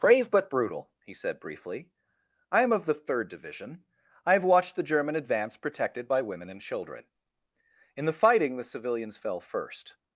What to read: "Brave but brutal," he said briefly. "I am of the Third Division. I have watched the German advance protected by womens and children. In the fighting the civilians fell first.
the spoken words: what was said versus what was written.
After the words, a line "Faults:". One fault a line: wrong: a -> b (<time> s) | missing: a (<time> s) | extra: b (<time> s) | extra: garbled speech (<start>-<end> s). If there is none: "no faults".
"Brave but brutal," he said briefly. "I am of the Third Division. I have watched the German advance protected by women and children. In the fighting the civilians fell first.
Faults:
wrong: womens -> women (6.2 s)